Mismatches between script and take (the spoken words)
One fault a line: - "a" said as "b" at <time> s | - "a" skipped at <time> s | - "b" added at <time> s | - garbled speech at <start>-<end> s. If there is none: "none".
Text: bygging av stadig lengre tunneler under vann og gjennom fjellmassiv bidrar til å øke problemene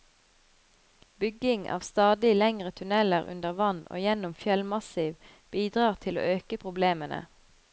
none